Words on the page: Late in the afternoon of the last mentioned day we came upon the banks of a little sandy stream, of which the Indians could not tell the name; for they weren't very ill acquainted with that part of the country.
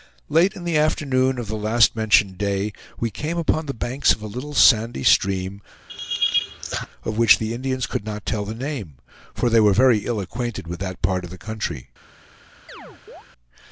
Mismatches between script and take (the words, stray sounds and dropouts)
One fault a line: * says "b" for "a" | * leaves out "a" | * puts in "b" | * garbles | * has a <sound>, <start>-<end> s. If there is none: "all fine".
* has a laugh, 5.9-6.9 s
* says "were" for "weren't"
* has a chirp, 12.7-13.2 s